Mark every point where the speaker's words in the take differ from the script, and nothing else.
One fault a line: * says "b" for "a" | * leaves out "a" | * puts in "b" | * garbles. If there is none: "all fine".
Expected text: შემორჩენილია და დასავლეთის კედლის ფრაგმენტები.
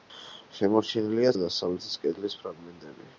all fine